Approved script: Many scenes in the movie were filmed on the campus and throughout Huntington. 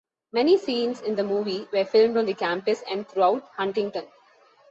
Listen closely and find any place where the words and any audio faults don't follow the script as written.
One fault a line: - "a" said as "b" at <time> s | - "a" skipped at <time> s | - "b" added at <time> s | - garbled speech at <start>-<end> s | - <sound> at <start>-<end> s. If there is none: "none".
none